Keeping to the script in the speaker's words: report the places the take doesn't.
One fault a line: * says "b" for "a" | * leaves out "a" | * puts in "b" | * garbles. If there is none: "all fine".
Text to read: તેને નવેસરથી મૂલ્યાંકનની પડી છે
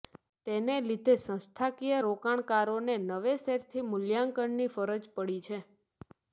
* puts in "લીધે સંસ્થાકીય રોકાણકારોને"
* puts in "ફરજ"